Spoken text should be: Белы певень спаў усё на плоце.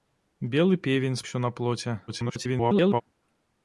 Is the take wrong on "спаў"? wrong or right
wrong